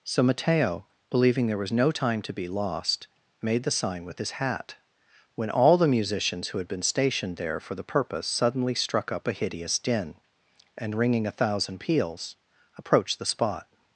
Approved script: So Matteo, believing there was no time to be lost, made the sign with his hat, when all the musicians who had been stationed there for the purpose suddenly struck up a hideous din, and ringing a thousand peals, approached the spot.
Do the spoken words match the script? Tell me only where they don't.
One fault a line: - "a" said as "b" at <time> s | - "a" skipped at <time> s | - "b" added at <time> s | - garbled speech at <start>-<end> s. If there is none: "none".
none